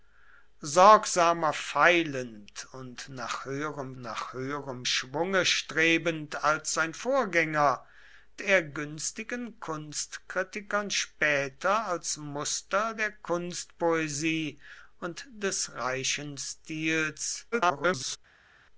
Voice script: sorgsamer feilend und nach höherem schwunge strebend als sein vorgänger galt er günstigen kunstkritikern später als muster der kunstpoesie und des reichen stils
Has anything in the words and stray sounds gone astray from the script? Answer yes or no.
yes